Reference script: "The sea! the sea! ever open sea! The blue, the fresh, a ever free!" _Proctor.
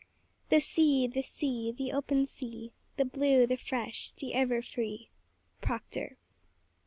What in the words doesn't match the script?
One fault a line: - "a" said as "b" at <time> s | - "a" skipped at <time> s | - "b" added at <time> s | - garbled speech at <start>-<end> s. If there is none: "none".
- "ever" said as "the" at 1.7 s
- "a" said as "the" at 4.1 s